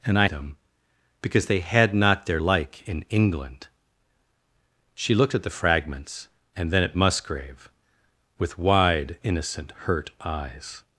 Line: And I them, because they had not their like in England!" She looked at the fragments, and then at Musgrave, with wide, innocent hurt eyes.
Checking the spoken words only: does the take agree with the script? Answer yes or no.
yes